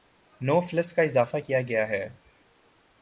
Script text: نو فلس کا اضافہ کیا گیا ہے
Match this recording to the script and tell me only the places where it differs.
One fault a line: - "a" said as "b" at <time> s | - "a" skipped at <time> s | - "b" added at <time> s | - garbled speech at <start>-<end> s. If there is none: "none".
none